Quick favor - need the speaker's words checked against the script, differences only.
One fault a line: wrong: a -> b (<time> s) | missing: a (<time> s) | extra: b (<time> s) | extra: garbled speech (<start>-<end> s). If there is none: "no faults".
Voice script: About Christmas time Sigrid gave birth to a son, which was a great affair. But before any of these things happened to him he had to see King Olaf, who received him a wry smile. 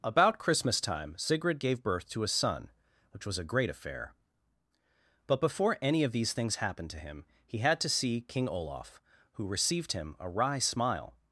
no faults